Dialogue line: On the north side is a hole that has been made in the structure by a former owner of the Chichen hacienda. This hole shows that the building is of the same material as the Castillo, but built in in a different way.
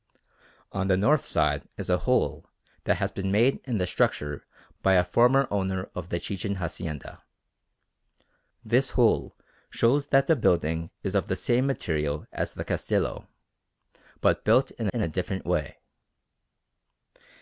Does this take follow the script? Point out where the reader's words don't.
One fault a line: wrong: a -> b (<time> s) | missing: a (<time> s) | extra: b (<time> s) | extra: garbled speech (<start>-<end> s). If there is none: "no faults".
no faults